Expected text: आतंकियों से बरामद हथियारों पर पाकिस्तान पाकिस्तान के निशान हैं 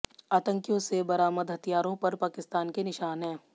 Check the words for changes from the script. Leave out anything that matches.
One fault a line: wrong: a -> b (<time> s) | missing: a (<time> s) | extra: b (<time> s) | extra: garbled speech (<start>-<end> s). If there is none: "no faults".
missing: पाकिस्तान (2.7 s)